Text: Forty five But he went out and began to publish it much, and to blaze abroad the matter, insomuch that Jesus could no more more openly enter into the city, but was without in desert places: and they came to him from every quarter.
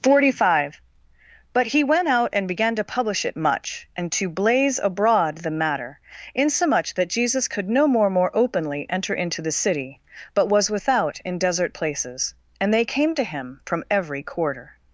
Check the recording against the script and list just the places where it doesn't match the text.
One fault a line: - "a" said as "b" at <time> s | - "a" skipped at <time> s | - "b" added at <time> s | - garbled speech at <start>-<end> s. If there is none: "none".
none